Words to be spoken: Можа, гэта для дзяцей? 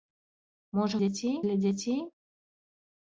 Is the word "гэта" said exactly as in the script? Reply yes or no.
no